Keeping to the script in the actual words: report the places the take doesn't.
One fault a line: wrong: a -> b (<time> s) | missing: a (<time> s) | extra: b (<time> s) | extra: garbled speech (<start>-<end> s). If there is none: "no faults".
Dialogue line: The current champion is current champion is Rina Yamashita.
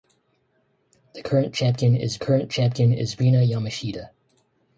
no faults